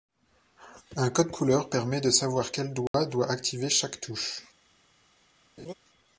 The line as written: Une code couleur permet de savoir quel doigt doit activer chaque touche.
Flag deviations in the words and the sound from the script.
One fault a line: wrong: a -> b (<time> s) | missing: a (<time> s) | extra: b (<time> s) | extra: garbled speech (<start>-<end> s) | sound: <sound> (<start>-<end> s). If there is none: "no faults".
wrong: Une -> Un (0.9 s)
sound: dropout (2.9-2.9 s)
sound: laugh (5.6-5.7 s)